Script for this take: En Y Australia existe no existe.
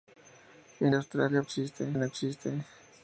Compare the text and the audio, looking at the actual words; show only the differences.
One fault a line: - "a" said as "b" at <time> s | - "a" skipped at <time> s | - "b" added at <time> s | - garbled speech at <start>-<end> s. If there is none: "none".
none